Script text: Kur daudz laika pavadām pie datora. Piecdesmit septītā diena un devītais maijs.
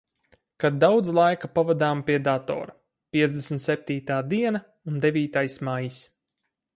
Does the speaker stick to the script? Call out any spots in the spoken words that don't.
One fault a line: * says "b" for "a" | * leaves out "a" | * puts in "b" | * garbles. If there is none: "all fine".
* says "Kad" for "Kur"